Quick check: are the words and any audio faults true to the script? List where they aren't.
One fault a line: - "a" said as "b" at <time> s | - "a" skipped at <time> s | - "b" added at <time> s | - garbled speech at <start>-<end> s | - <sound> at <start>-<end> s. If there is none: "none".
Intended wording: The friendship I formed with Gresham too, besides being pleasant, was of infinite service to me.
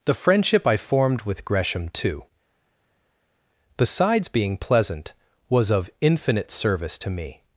none